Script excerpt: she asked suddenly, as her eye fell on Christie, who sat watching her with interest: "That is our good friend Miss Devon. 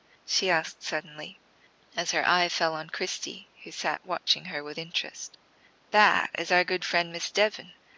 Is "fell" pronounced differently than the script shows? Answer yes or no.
no